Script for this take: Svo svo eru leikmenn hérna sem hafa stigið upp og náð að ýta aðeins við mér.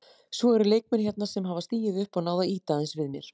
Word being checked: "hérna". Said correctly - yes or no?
yes